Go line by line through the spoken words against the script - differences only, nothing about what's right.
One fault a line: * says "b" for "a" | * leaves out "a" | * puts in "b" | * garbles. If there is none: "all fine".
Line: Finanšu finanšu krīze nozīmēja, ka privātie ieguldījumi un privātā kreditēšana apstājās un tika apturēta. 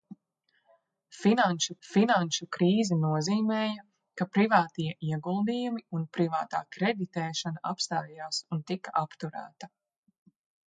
all fine